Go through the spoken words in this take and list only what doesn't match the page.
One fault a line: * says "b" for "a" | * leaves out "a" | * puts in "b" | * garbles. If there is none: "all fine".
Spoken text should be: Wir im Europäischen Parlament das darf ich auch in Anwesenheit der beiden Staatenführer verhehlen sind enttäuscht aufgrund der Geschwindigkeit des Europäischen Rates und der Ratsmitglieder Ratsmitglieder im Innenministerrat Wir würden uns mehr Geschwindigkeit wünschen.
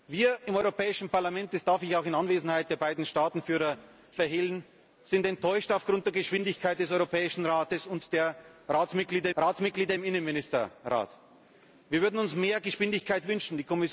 all fine